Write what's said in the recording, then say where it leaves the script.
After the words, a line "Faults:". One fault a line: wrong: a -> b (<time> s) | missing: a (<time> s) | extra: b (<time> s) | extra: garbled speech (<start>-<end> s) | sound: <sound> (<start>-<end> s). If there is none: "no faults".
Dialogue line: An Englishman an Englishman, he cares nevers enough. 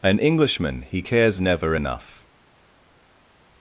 An Englishman, he cares never enough.
Faults:
missing: an Englishman (0.8 s)
wrong: nevers -> never (1.4 s)